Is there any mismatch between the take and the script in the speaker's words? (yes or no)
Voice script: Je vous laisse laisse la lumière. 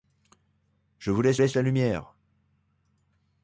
no